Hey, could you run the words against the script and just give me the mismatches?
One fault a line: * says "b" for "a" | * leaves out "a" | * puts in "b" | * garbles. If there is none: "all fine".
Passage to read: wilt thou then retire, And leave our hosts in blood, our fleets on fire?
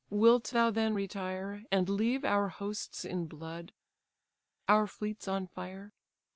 all fine